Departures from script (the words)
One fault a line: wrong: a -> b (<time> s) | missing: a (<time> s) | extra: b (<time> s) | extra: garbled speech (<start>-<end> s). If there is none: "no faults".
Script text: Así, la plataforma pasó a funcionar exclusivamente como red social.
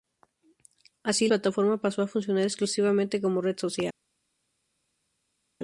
missing: la (1.3 s)